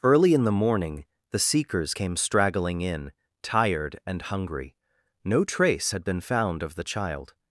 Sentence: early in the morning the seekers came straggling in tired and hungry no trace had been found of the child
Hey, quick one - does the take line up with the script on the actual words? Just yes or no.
yes